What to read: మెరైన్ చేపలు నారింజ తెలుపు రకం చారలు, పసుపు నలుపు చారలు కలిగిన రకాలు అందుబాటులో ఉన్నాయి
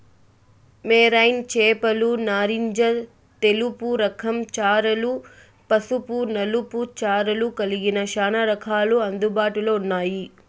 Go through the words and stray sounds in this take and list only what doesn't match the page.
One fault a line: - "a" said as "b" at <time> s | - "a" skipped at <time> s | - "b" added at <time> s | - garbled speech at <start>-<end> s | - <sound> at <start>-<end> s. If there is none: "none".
- "చానా" added at 8.1 s